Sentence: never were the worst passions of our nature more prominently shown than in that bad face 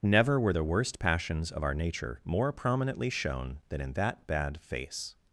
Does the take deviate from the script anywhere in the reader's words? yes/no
no